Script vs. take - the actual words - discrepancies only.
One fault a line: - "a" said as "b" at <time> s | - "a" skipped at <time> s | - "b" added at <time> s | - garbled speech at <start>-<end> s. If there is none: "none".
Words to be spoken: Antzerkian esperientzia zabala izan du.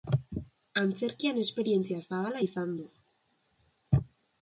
none